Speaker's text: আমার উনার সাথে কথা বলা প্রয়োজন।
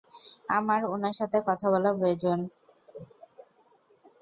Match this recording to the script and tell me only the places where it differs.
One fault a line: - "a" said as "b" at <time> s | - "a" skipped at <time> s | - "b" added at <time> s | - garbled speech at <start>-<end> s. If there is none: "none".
none